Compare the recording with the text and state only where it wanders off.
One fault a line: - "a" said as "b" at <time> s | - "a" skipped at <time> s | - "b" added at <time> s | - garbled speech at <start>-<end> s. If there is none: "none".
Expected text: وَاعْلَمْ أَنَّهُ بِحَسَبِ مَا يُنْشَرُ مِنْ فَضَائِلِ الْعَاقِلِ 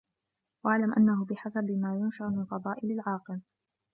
none